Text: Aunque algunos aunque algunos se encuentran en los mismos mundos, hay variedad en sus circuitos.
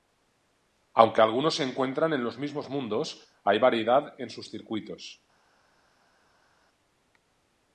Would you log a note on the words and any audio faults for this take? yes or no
yes